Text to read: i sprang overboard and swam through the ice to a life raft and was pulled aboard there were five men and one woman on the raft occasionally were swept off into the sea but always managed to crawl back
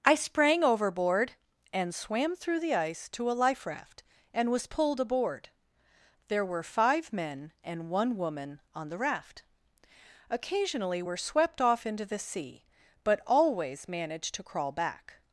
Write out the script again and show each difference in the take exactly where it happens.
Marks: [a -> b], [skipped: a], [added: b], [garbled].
i sprang overboard and swam through the ice to a life raft and was pulled aboard there were five men and one woman on the raft occasionally were swept off into the sea but always managed to crawl back